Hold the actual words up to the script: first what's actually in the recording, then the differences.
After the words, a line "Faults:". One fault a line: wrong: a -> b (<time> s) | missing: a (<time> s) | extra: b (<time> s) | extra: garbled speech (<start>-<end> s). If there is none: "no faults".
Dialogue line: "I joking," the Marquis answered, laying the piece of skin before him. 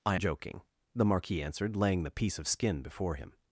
"I joking," the Marquis answered, laying the piece of skin before him.
Faults:
no faults